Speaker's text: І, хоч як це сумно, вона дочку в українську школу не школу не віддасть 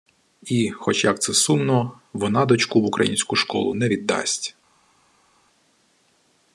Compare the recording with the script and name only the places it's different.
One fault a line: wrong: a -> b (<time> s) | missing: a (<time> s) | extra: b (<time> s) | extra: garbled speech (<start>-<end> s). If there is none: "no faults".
missing: школу не (3.9 s)